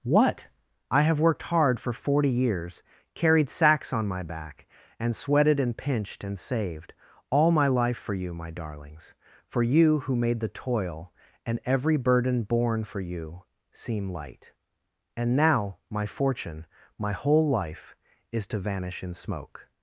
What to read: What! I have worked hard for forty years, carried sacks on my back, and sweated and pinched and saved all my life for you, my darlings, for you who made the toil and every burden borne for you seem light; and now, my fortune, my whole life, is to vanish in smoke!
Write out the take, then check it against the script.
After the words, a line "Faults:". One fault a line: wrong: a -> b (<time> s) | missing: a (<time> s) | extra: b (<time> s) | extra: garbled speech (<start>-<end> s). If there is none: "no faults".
What! I have worked hard for forty years, carried sacks on my back, and sweated and pinched and saved all my life for you, my darlings, for you who made the toil and every burden borne for you seem light; and now, my fortune, my whole life, is to vanish in smoke!
Faults:
no faults